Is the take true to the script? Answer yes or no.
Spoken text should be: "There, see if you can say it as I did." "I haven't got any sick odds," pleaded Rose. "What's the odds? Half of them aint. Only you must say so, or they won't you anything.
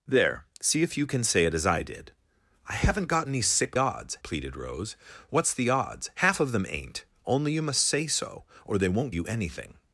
yes